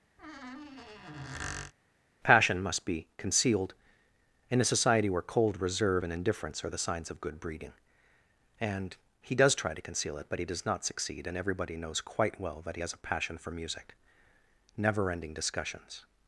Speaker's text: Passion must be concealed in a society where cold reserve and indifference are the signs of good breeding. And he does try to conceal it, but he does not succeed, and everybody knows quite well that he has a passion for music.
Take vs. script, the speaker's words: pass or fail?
fail